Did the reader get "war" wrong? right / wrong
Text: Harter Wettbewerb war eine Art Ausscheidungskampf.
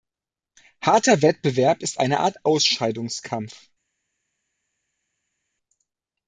wrong